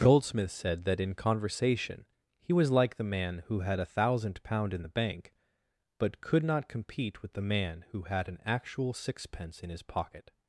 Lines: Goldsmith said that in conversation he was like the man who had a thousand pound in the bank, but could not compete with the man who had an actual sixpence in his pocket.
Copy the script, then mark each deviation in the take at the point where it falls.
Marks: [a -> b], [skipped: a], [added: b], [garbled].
Goldsmith said that in conversation he was like the man who had a thousand pound in the bank, but could not compete with the man who had an actual sixpence in his pocket.